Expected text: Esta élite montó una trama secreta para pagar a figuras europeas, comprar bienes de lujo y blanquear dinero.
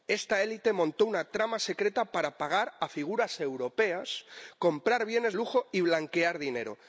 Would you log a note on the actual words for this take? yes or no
yes